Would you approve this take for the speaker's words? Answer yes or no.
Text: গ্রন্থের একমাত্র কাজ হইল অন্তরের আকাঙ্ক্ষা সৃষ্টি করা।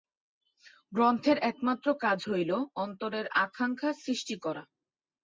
yes